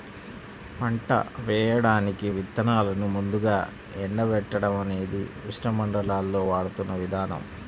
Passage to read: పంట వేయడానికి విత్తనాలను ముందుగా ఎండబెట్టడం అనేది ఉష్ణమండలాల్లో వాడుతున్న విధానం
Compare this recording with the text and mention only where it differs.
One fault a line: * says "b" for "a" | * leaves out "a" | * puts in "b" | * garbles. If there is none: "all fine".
all fine